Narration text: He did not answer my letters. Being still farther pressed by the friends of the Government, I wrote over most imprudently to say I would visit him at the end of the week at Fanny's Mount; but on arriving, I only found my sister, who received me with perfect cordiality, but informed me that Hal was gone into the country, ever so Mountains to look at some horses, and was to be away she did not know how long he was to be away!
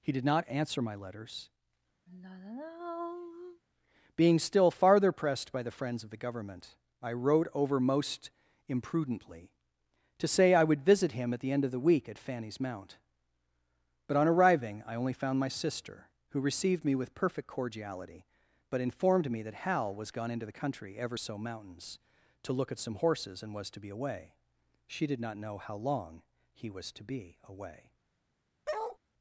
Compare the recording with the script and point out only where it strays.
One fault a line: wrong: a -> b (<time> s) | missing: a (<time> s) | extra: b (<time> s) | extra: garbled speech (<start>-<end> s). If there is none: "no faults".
no faults